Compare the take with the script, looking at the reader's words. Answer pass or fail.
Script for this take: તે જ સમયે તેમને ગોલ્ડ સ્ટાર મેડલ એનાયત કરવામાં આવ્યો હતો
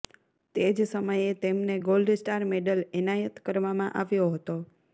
pass